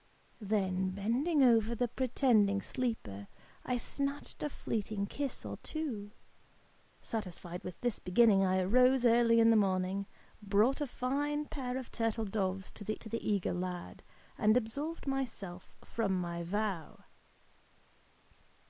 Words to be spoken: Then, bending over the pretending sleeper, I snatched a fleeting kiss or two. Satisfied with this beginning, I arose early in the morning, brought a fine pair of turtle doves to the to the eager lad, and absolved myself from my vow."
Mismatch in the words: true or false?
false